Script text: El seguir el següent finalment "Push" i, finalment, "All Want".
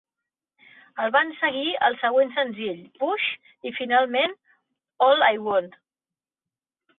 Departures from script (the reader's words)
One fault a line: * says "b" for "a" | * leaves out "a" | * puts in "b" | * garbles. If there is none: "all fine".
* puts in "van"
* says "senzill" for "finalment"
* puts in "I"